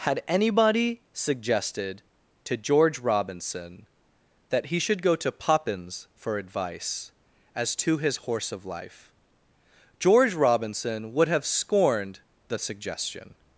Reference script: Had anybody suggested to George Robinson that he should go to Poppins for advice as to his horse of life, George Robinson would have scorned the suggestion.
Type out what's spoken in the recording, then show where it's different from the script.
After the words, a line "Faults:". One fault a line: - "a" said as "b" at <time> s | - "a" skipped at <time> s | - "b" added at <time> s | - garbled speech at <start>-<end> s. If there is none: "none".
Had anybody suggested to George Robinson that he should go to Poppins for advice as to his horse of life, George Robinson would have scorned the suggestion.
Faults:
none